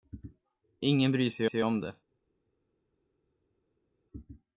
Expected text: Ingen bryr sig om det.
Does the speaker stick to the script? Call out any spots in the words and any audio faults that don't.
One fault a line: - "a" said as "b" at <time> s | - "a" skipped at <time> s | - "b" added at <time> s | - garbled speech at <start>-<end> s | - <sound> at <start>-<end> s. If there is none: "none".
- "sig" added at 1.4 s